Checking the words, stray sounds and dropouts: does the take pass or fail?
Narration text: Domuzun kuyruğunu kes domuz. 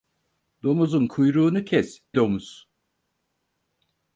pass